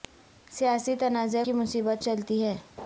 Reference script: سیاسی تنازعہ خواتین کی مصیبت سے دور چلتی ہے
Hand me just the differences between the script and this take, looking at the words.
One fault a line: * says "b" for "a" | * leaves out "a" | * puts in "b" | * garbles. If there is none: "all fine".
* leaves out "خواتین"
* leaves out "سے دور"